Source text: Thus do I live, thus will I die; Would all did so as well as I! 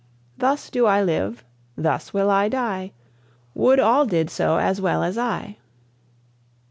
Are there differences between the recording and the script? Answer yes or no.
no